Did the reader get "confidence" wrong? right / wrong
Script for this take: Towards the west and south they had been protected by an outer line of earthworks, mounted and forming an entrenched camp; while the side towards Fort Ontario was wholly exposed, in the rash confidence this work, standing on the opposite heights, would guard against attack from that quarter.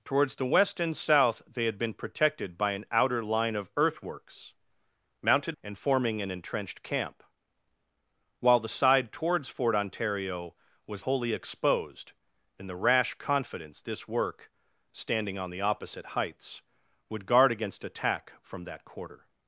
right